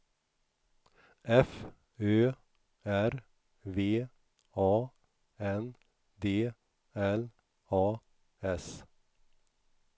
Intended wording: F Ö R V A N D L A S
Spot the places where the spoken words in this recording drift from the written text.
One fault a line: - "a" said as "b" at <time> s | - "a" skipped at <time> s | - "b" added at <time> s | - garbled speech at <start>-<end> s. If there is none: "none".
none